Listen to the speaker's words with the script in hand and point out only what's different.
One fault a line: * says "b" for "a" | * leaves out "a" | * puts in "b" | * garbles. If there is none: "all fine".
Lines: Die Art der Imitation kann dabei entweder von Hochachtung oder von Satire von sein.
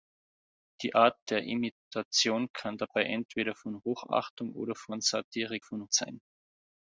all fine